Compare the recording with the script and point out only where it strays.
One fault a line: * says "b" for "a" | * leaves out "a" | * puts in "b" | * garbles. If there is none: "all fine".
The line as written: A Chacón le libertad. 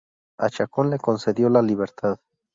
* puts in "concedió la"